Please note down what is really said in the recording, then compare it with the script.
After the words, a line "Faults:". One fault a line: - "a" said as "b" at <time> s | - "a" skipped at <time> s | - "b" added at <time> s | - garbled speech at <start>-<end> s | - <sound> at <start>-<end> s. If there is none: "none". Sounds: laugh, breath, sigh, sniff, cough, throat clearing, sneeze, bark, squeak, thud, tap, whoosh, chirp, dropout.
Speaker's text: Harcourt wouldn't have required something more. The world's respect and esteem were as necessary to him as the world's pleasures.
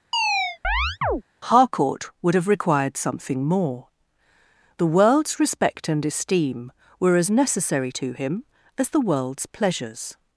Harcourt would have required something more. The world's respect and esteem were as necessary to him as the world's pleasures.
Faults:
- chirp at 0.1-1.2 s
- "wouldn't" said as "would" at 2.2 s